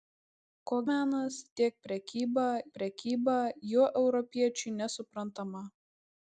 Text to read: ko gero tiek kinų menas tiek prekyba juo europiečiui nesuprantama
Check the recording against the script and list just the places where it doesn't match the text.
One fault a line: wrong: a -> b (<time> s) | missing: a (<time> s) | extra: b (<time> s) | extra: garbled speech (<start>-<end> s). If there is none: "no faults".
wrong: gero -> menas (0.9 s)
wrong: kinų menas tiek -> prekyba (1.9 s)